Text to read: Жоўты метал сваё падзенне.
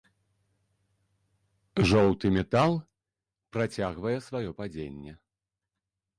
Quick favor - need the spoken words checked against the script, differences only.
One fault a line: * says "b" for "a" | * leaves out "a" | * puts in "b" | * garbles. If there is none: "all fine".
* puts in "працягвае"